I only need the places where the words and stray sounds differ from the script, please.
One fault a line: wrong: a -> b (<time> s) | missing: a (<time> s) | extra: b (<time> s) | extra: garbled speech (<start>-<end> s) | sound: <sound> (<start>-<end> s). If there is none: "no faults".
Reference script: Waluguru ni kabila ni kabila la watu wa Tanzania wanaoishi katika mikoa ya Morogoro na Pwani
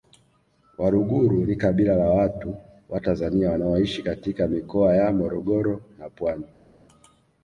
missing: ni kabila (1.9 s)